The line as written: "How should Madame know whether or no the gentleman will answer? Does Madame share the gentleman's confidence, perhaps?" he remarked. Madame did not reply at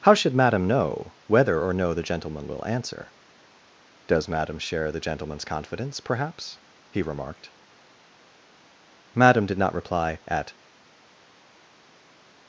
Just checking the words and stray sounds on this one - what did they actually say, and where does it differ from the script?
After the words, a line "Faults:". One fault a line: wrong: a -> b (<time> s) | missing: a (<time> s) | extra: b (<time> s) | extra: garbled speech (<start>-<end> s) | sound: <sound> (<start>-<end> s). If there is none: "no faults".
"How should Madame know whether or no the gentleman will answer? Does Madame share the gentleman's confidence, perhaps?" he remarked. Madame did not reply at
Faults:
no faults